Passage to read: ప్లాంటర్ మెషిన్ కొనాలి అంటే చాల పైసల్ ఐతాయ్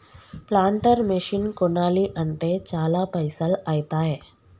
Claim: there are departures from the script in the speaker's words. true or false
false